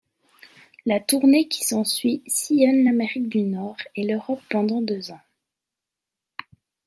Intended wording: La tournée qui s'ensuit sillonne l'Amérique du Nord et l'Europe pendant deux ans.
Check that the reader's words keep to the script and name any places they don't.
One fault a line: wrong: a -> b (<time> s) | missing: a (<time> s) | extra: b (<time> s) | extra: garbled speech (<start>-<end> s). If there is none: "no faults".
no faults